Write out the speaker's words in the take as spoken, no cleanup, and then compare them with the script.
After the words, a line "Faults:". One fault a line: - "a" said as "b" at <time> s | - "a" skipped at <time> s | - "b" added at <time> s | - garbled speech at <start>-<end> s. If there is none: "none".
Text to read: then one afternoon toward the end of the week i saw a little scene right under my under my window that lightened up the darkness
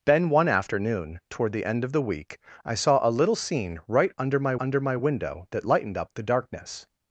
then one afternoon toward the end of the week i saw a little scene right under my under my window that lightened up the darkness
Faults:
none